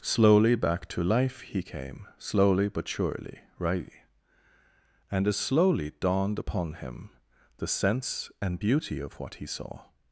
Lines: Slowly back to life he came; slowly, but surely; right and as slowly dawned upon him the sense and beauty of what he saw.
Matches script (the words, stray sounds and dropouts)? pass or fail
pass